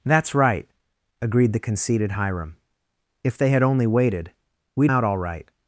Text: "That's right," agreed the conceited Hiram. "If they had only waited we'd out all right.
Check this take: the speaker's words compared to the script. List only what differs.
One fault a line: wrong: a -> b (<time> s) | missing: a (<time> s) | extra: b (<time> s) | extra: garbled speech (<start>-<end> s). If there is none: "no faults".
no faults